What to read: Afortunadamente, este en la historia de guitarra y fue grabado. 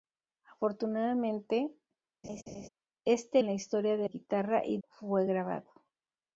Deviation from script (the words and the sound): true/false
true